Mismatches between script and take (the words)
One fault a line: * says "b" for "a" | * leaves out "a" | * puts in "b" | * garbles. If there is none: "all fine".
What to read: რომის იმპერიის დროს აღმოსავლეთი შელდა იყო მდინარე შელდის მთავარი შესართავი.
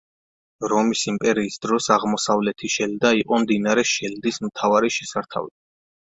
all fine